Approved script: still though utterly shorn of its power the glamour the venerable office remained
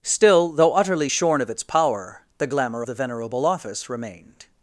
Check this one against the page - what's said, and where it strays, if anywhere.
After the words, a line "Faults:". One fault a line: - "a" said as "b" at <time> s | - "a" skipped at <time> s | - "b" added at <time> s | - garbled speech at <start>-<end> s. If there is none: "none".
still though utterly shorn of its power the glamour the venerable office remained
Faults:
none